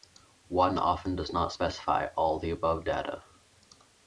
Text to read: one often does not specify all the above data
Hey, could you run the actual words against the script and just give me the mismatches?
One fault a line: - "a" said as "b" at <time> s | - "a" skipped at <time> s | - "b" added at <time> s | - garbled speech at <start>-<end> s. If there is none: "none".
none